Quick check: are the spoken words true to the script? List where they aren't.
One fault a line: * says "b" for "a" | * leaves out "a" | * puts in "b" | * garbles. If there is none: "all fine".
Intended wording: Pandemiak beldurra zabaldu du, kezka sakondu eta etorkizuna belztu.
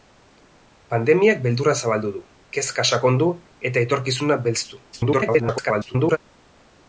* garbles